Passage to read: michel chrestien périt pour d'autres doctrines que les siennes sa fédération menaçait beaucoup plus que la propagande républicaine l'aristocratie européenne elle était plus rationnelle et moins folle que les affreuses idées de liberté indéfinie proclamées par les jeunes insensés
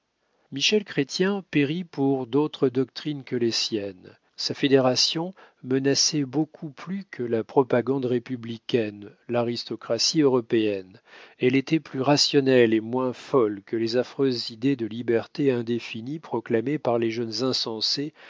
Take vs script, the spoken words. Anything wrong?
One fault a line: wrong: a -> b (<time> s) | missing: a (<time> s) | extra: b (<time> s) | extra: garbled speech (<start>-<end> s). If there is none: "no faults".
no faults